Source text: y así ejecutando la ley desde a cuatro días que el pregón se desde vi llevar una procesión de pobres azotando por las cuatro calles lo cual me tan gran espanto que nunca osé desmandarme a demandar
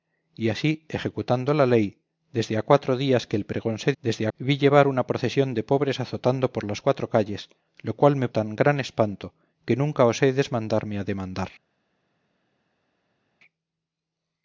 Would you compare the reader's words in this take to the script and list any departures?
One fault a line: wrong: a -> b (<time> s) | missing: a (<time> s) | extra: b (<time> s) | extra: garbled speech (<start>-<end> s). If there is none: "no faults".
no faults